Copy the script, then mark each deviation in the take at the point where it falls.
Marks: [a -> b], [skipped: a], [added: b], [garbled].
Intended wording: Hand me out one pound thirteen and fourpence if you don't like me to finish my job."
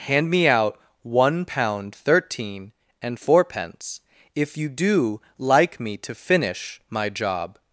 Hand me out one pound thirteen and fourpence if you [don't -> do] like me to finish my job."